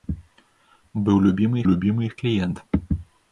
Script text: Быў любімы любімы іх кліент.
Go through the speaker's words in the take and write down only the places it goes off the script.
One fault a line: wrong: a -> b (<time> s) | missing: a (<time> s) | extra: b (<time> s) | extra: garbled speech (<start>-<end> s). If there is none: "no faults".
no faults